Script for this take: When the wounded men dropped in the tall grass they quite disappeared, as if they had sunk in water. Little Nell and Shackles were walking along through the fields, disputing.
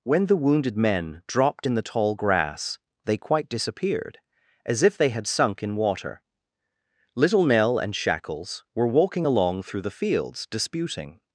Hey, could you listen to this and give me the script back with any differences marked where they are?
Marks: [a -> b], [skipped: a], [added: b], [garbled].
When the wounded men dropped in the tall grass they quite disappeared, as if they had sunk in water. Little Nell and Shackles were walking along through the fields, disputing.